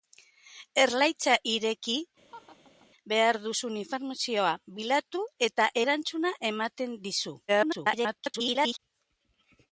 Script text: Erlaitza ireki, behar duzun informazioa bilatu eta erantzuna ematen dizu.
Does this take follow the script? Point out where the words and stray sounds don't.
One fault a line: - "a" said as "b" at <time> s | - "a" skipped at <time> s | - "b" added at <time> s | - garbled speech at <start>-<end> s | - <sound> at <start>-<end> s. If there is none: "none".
- laugh at 2.3-2.9 s
- garbled speech at 7.5-8.8 s